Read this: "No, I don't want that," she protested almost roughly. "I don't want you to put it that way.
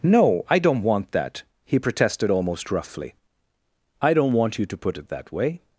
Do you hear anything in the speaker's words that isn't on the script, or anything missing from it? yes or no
yes